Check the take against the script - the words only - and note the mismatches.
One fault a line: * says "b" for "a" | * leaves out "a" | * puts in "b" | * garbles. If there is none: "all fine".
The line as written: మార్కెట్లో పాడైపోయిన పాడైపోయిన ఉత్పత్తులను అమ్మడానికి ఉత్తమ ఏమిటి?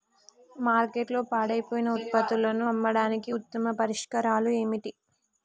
* leaves out "పాడైపోయిన"
* puts in "పరిష్కారాలు"